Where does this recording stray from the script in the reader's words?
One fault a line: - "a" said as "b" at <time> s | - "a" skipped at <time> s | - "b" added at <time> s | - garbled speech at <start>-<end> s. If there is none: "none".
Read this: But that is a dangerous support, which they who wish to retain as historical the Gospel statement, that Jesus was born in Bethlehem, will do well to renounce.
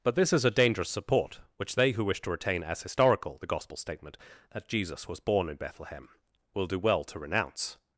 - "that" said as "this" at 0.1 s